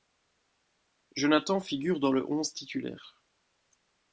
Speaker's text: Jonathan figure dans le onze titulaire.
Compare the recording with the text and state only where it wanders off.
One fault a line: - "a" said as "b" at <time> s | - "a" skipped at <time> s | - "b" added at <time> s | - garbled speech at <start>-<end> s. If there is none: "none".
none